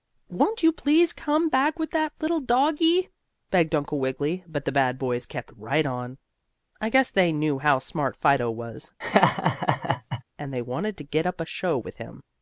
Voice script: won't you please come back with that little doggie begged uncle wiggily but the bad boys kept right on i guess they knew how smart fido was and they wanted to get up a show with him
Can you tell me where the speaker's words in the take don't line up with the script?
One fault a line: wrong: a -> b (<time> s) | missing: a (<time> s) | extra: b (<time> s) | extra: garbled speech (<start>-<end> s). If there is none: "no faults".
no faults